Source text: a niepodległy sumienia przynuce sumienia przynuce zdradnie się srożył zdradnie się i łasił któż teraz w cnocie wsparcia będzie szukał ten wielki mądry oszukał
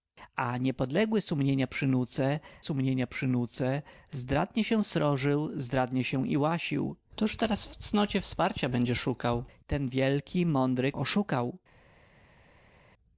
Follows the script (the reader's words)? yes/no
yes